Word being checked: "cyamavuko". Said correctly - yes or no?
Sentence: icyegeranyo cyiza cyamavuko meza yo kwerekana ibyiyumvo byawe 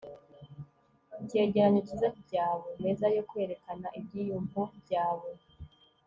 no